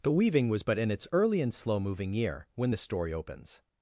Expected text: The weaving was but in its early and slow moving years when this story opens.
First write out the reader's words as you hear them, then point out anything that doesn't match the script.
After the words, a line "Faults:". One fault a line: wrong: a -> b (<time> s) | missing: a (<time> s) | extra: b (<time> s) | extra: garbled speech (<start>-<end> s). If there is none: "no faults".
The weaving was but in its early and slow moving year when this story opens.
Faults:
wrong: years -> year (2.1 s)